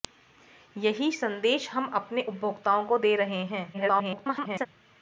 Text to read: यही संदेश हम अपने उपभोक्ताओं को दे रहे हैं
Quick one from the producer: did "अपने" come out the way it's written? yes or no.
yes